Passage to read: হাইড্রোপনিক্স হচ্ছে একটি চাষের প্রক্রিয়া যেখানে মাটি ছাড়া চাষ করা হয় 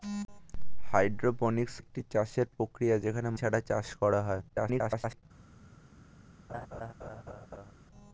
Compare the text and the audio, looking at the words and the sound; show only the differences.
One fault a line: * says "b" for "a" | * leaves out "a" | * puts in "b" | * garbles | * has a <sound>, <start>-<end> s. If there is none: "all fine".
* leaves out "হচ্ছে"
* leaves out "মাটি"
* garbles
* has a laugh, 6.5-7.7 s